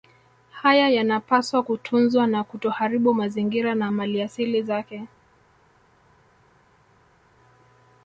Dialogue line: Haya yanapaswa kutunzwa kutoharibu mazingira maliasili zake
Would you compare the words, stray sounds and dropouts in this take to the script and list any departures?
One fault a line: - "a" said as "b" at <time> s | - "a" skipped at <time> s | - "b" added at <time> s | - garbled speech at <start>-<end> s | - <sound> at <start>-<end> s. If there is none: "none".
- "na" added at 2.3 s
- "na" added at 3.8 s